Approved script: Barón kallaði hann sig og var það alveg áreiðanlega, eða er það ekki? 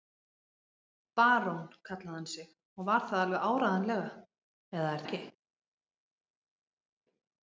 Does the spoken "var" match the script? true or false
true